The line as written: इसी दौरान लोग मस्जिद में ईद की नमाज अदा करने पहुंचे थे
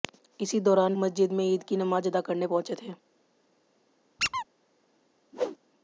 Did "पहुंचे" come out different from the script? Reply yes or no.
no